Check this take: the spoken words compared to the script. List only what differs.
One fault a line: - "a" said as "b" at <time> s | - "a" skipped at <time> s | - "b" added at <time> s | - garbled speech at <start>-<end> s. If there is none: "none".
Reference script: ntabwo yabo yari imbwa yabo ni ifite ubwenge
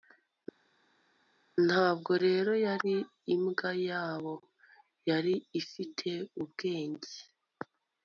- "yabo" said as "rero" at 2.3 s
- "ni" said as "yari" at 5.1 s